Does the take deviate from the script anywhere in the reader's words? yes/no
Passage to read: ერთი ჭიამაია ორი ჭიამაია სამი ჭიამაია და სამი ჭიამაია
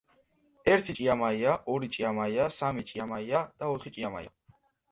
yes